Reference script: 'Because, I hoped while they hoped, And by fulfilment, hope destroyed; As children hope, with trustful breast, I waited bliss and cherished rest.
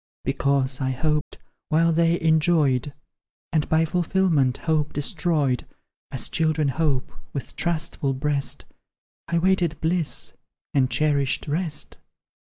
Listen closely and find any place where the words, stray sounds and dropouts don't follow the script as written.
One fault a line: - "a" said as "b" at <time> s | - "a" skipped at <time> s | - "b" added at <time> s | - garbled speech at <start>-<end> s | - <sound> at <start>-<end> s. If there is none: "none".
- dropout at 1.2-1.3 s
- "hoped" said as "enjoyed" at 2.2 s